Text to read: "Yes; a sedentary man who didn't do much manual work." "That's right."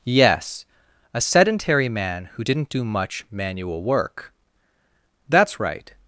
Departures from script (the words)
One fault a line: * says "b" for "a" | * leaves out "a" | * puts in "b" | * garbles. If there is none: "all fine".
all fine